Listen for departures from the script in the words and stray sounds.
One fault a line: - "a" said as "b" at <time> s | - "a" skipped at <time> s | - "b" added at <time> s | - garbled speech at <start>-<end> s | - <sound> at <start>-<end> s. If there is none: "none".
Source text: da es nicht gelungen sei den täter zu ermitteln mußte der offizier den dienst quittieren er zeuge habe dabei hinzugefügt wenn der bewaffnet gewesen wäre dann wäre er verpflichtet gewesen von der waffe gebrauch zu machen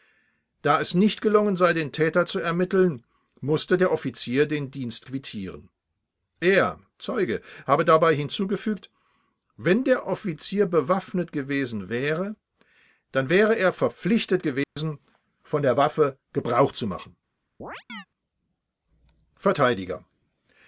- "offizier" added at 10.1 s
- dropout at 14.6-14.8 s
- chirp at 17.6-18.1 s